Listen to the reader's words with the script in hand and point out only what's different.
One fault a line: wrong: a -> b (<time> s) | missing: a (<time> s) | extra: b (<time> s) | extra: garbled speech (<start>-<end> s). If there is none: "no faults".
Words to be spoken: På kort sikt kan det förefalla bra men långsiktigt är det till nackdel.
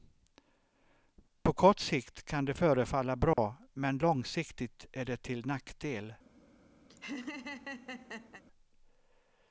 no faults